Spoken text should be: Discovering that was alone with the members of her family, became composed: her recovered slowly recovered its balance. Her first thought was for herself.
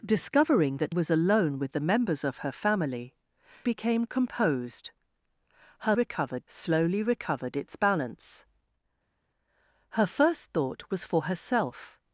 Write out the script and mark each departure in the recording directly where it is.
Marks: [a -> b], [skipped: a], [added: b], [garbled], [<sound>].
Discovering that was alone with the members of her family, became composed: her recovered slowly recovered its balance. Her first thought was for herself.